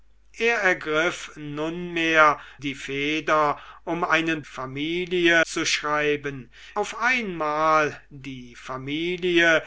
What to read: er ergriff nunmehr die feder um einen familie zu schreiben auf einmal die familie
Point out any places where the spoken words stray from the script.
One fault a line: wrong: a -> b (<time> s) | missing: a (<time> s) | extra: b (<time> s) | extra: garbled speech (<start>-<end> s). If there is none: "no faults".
no faults